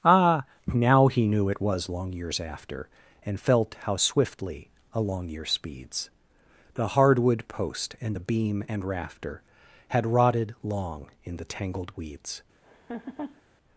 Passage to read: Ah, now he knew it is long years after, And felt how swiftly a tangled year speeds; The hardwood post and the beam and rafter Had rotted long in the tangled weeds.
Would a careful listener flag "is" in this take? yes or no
yes